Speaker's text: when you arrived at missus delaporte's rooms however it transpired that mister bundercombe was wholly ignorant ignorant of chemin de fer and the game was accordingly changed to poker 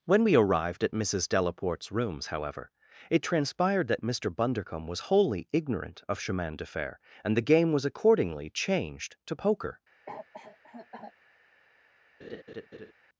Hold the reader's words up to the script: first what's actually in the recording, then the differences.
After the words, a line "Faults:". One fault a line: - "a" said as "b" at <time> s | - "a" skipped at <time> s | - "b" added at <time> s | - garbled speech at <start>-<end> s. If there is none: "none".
when we arrived at missus delaporte's rooms however it transpired that mister bundercombe was wholly ignorant of chemin de fer and the game was accordingly changed to poker
Faults:
- "you" said as "we" at 0.2 s
- "ignorant" skipped at 6.0 s